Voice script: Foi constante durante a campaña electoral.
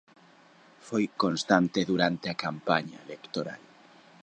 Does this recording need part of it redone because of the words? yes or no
no